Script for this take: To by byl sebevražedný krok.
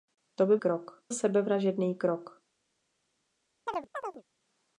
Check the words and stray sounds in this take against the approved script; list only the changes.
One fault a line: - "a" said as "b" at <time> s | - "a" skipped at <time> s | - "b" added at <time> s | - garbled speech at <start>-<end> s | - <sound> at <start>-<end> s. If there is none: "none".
- "byl" said as "krok" at 0.6 s
- chirp at 3.7-4.2 s